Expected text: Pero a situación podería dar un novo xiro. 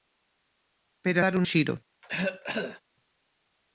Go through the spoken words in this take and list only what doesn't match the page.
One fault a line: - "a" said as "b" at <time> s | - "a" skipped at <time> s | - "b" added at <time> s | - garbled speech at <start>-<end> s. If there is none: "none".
- "a situación podería" skipped at 1.2 s
- "novo" skipped at 1.4 s